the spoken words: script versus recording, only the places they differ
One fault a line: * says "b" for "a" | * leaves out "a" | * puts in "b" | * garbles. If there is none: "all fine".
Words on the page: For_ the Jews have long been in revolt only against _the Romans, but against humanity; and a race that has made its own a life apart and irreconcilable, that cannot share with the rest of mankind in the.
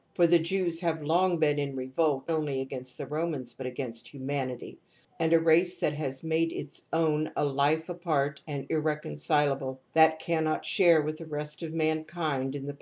all fine